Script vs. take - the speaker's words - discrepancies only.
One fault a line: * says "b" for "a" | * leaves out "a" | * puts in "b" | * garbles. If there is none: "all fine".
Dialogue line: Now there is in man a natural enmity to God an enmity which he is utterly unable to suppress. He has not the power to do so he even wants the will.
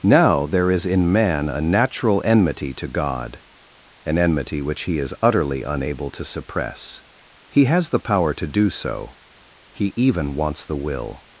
* leaves out "not"